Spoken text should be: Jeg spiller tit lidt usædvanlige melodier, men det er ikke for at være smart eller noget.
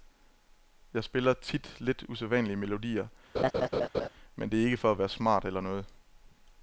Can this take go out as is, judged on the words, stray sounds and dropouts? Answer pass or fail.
fail